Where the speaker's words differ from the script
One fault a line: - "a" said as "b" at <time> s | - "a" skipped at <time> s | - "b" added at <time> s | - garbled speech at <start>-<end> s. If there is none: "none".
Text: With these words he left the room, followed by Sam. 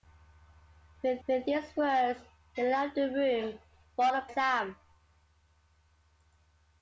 - "with" added at 1.3 s
- "by" skipped at 4.3 s